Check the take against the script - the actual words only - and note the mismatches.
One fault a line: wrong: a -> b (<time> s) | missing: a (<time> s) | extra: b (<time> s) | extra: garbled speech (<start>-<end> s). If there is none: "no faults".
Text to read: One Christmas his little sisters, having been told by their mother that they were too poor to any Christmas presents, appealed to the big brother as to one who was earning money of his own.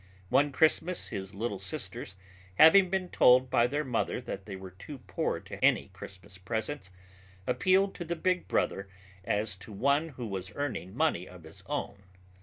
no faults